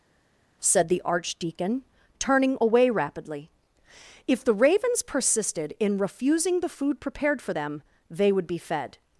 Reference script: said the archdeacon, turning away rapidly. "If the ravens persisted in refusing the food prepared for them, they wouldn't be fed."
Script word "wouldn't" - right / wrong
wrong